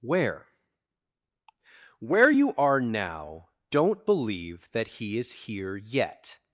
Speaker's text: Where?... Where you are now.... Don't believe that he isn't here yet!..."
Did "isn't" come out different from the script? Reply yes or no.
yes